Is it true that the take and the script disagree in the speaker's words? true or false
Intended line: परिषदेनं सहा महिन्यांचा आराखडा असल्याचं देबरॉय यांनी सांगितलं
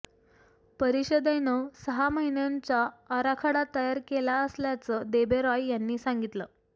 true